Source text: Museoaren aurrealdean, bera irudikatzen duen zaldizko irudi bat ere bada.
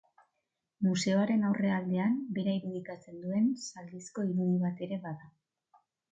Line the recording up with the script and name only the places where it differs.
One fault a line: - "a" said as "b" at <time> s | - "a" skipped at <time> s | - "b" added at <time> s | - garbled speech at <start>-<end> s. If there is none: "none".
none